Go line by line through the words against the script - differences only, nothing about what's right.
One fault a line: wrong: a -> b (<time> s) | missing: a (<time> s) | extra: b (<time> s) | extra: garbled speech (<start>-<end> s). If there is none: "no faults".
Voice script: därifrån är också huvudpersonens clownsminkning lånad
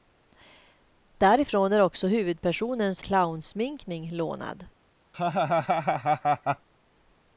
no faults